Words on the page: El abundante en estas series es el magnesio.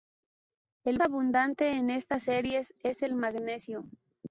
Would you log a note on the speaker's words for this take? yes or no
no